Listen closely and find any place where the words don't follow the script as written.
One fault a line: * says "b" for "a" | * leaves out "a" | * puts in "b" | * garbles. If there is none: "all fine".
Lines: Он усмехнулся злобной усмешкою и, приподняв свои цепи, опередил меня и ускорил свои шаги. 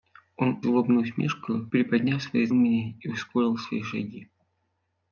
* leaves out "усмехнулся"
* leaves out "и"
* leaves out "цепи опередил"